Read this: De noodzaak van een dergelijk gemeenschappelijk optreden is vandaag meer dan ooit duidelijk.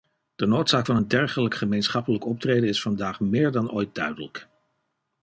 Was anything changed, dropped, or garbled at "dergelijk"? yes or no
no